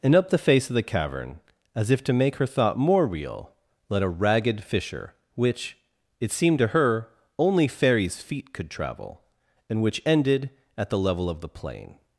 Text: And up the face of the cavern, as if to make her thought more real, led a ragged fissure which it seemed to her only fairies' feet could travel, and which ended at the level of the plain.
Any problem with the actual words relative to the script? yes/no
no